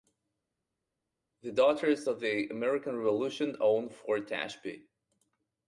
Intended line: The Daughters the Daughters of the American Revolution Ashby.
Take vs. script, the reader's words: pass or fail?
fail